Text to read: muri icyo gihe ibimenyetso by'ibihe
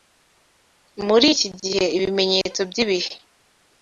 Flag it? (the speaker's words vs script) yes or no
yes